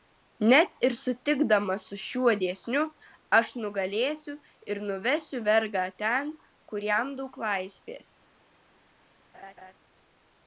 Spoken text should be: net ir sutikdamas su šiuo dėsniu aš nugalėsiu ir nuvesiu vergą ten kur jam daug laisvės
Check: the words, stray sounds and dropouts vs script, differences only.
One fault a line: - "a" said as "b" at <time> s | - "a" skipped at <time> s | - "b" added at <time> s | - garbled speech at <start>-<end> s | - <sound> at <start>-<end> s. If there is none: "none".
- laugh at 9.3-9.7 s